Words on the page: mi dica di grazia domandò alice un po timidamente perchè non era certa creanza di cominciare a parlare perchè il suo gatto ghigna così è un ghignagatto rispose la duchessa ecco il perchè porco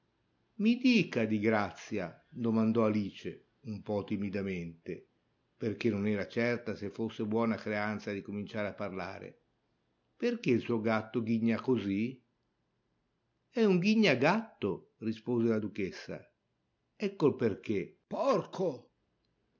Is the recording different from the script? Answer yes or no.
yes